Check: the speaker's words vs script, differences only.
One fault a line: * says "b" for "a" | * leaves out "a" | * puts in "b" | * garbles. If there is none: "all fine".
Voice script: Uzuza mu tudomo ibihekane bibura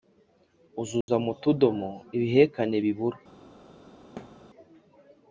all fine